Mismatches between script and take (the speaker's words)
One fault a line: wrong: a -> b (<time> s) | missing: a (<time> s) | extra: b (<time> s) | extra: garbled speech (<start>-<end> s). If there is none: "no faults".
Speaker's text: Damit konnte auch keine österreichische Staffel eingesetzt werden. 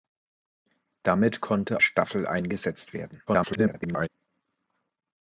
missing: auch keine österreichische (1.8 s)
extra: garbled speech (3.3-4.1 s)